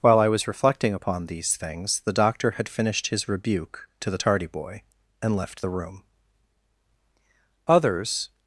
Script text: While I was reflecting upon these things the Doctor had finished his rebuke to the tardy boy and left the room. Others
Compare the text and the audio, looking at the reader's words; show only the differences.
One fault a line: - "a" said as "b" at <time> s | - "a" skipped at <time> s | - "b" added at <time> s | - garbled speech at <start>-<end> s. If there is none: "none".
none